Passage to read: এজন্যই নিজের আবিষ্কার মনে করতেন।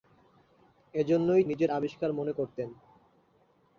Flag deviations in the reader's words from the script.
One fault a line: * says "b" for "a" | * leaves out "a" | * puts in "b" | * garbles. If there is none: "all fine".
all fine